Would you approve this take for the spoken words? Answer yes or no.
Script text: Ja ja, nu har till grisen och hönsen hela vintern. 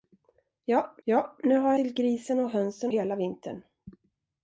yes